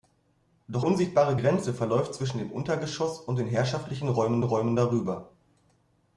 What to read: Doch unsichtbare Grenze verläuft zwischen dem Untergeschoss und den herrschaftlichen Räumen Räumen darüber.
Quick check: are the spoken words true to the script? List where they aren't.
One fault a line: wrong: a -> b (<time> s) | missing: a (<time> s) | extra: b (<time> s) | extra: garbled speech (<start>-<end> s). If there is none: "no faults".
no faults